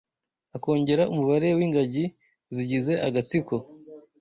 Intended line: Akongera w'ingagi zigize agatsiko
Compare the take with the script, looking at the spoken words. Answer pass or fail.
fail